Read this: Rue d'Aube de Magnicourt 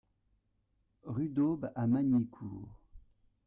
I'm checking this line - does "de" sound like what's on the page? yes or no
no